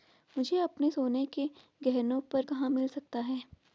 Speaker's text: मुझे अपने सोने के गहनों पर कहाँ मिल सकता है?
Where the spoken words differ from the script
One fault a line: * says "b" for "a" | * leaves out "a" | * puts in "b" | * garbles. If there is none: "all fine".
all fine